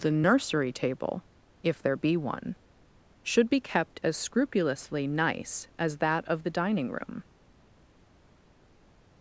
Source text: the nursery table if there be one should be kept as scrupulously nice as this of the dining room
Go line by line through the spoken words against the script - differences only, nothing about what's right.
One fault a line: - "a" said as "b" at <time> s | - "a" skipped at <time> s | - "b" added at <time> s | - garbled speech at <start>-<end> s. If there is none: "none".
- "this" said as "that" at 6.0 s